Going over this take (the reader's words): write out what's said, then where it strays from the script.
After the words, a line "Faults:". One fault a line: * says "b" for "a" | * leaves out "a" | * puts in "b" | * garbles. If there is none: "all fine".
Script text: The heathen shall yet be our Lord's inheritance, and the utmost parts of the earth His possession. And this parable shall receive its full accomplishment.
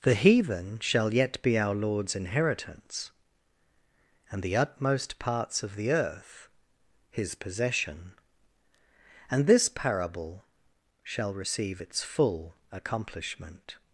The heathen shall yet be our Lord's inheritance, and the utmost parts of the earth His possession. And this parable shall receive its full accomplishment.
Faults:
all fine